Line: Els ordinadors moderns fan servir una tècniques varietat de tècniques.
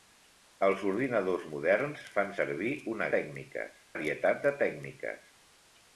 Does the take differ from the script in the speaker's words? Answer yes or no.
no